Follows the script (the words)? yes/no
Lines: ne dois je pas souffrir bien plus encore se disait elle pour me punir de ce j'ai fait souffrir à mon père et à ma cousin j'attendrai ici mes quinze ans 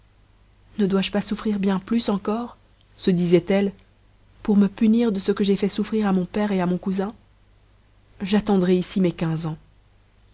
no